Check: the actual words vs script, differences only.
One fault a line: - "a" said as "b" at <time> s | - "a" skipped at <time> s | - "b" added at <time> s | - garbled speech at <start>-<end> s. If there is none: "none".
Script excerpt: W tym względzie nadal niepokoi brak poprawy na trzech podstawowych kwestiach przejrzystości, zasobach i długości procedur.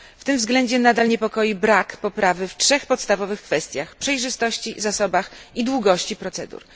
- "na" said as "w" at 2.4 s